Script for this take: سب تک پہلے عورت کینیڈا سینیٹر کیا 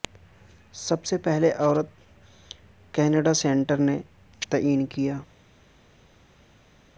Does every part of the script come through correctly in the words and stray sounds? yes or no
no